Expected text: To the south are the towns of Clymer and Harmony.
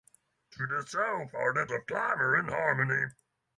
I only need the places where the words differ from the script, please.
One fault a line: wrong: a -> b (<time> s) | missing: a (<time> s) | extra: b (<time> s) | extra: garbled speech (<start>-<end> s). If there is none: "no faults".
missing: towns (1.7 s)